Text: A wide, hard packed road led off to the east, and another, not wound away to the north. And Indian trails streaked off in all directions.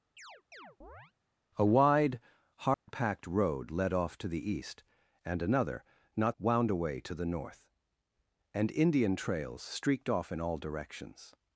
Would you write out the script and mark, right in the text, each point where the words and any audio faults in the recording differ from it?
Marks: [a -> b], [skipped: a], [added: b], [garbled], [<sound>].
[chirp] A wide, hard [dropout] packed road led off to the east, and another, not wound away to the north. And Indian trails streaked off in all directions.